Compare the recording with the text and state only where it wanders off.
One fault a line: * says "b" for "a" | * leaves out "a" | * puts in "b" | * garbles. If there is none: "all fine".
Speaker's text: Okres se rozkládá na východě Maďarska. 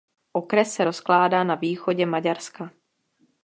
all fine